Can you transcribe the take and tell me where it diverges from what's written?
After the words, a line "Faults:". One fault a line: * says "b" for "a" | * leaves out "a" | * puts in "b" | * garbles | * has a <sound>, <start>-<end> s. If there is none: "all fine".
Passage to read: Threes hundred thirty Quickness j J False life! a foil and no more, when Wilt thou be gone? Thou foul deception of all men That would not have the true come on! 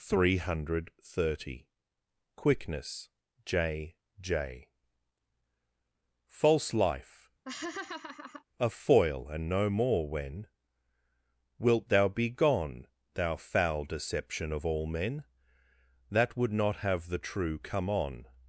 Three hundred thirty Quickness j J False life! a foil and no more, when Wilt thou be gone? Thou foul deception of all men That would not have the true come on!
Faults:
* says "Three" for "Threes"
* has a laugh, 7.5-8.4 s